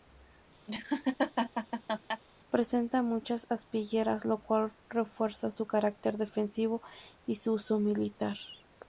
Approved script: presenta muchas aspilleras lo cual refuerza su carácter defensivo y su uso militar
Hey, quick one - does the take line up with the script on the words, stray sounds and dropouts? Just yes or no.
no